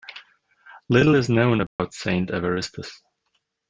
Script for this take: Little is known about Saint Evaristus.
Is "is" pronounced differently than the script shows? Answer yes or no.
no